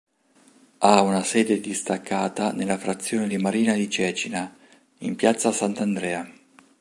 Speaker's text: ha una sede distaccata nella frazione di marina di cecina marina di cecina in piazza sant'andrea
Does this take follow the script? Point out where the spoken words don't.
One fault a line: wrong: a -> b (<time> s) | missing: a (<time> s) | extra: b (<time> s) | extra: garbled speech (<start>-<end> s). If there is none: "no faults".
missing: marina di cecina (4.5 s)